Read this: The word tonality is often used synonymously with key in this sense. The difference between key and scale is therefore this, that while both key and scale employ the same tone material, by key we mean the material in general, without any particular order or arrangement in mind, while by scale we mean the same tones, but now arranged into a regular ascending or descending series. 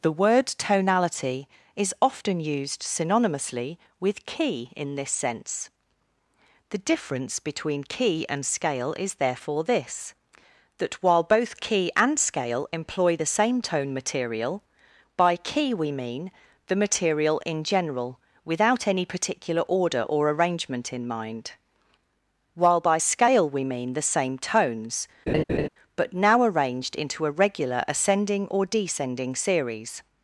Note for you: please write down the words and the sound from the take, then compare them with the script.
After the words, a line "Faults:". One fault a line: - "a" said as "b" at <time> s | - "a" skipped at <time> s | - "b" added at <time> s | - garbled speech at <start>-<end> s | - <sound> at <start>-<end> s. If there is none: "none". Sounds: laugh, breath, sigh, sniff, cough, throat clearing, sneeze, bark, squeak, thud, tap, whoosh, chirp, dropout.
The word tonality is often used synonymously with key in this sense. The difference between key and scale is therefore this, that while both key and scale employ the same tone material, by key we mean the material in general, without any particular order or arrangement in mind, while by scale we mean the same tones, but now arranged into a regular ascending or descending series.
Faults:
- laugh at 25.3-25.7 s